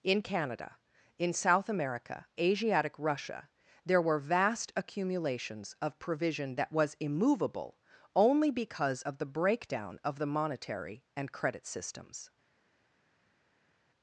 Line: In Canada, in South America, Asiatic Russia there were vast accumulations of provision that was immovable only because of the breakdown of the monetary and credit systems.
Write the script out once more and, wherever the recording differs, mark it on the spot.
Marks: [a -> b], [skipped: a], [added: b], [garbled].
In Canada, in South America, Asiatic Russia there were vast accumulations of provision that was immovable only because of the breakdown of the monetary and credit systems.